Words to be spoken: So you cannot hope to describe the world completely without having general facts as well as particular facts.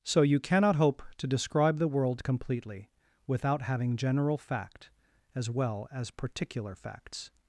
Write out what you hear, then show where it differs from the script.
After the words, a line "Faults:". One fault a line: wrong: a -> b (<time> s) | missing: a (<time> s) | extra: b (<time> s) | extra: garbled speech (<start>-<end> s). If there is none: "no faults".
So you cannot hope to describe the world completely without having general fact as well as particular facts.
Faults:
wrong: facts -> fact (4.4 s)